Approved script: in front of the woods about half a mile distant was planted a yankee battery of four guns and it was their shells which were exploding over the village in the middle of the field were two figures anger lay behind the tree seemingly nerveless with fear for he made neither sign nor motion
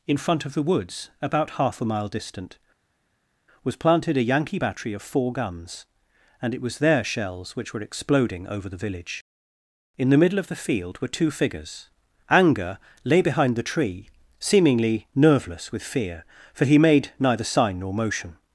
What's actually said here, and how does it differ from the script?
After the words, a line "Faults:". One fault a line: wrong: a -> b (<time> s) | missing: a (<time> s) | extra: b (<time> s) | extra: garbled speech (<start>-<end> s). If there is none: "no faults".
in front of the woods about half a mile distant was planted a yankee battery of four guns and it was their shells which were exploding over the village in the middle of the field were two figures anger lay behind the tree seemingly nerveless with fear for he made neither sign nor motion
Faults:
no faults